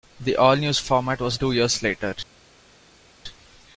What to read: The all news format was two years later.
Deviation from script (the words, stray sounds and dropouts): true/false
false